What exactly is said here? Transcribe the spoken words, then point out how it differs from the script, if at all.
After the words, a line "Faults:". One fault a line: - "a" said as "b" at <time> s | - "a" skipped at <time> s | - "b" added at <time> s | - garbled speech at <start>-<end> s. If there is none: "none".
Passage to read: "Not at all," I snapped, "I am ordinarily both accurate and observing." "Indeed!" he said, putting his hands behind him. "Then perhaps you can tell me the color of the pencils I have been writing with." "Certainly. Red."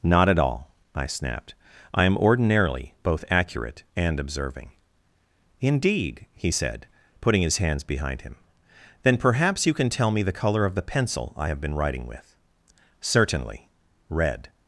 "Not at all," I snapped, "I am ordinarily both accurate and observing." "Indeed!" he said, putting his hands behind him. "Then perhaps you can tell me the color of the pencil I have been writing with." "Certainly. Red."
Faults:
- "pencils" said as "pencil" at 10.8 s